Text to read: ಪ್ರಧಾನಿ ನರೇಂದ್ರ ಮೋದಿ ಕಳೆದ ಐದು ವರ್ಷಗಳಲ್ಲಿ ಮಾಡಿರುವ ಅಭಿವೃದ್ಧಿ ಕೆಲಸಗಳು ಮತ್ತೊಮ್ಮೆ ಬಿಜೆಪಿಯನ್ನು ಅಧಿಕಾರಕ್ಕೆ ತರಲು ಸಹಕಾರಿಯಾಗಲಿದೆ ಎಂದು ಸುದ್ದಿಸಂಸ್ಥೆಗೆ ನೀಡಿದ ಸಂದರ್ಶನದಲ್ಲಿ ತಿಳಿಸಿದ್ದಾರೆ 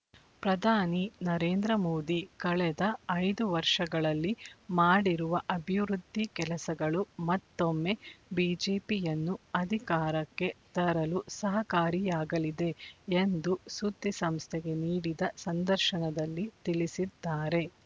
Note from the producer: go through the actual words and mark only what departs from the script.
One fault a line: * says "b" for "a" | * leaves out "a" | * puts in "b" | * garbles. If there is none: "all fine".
all fine